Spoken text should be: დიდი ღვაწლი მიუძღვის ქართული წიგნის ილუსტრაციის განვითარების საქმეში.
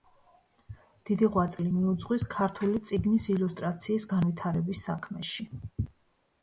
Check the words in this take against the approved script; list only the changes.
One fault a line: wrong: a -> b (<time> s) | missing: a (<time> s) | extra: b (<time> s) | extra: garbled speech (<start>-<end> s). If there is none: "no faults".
no faults